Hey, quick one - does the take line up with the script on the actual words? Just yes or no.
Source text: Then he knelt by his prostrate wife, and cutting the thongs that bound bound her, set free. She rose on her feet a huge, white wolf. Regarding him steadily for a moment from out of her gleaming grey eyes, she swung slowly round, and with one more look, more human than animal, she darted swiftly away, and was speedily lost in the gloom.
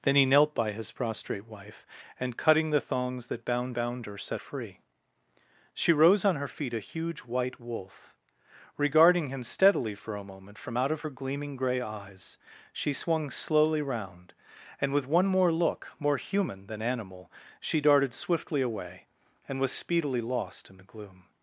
yes